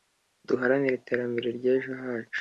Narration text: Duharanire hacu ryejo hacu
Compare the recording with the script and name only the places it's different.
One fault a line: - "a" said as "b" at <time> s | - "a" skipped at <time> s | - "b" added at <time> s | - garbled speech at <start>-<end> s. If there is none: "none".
- "hacu" said as "iterambere" at 1.0 s